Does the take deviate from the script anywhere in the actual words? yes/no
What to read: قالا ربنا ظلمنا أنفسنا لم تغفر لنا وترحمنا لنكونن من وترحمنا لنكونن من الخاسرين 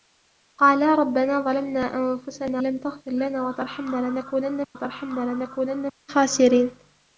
no